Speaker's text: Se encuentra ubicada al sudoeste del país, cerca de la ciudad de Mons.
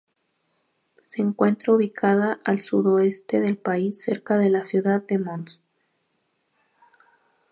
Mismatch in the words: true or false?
false